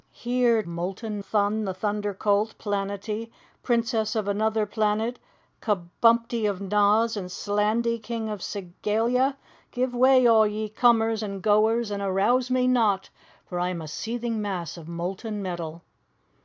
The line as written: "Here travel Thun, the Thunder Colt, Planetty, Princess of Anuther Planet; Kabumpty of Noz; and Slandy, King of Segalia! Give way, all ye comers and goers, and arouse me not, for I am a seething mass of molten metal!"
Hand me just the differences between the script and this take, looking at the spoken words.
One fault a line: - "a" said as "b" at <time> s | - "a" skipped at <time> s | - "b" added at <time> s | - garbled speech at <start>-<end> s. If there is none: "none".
- "travel" said as "molten" at 0.7 s